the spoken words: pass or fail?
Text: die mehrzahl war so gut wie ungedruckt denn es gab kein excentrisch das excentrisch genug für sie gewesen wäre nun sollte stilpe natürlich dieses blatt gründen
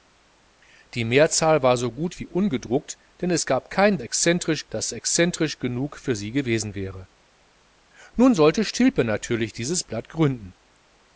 pass